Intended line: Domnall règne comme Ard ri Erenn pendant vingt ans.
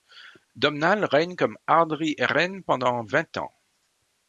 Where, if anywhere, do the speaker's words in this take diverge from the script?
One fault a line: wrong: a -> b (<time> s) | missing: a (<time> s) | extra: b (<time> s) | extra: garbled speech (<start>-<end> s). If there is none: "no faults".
no faults